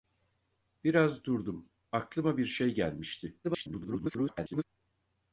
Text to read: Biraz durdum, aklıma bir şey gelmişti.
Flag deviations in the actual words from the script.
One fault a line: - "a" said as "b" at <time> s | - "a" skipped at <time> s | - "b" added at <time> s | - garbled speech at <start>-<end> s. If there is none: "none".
- garbled speech at 3.4-4.6 s